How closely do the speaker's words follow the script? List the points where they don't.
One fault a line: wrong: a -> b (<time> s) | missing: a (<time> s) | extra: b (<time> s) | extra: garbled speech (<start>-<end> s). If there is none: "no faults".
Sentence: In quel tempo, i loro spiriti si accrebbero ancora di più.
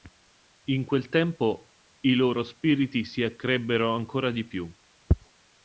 no faults